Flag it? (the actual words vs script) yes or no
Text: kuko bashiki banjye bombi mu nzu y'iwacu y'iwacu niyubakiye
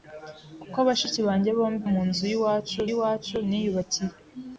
no